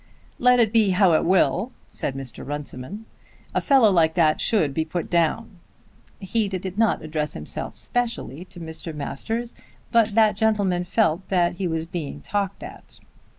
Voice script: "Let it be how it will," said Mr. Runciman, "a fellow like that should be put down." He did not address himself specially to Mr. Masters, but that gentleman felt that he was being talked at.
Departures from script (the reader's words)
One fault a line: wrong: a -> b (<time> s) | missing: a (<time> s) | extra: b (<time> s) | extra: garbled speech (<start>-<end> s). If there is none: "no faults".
extra: did (6.6 s)